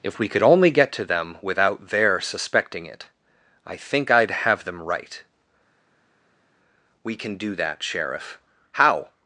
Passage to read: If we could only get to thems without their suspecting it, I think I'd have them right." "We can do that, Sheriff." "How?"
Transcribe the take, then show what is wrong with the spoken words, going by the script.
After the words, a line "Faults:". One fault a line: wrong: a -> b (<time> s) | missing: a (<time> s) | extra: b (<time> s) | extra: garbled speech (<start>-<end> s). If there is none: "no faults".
If we could only get to them without their suspecting it, I think I'd have them right." "We can do that, Sheriff." "How?"
Faults:
wrong: thems -> them (1.1 s)